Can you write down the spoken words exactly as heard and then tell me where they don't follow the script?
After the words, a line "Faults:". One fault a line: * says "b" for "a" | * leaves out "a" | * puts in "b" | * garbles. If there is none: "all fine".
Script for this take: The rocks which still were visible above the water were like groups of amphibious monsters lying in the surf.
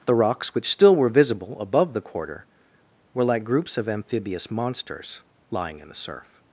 The rocks which still were visible above the quarter were like groups of amphibious monsters lying in the surf.
Faults:
* says "quarter" for "water"